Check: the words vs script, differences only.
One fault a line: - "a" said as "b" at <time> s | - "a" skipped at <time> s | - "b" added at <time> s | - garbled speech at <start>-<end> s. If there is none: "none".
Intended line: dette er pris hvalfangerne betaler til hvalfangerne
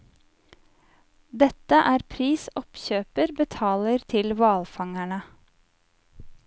- "hvalfangerne" said as "oppkjøper" at 2.6 s